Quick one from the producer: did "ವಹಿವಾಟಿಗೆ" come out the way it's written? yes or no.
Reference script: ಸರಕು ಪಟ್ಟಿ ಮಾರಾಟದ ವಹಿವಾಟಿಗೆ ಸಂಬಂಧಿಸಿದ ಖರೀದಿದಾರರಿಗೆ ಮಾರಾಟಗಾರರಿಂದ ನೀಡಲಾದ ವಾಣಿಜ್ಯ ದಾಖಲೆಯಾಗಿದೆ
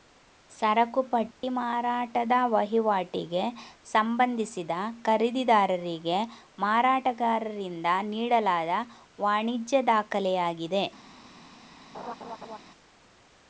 yes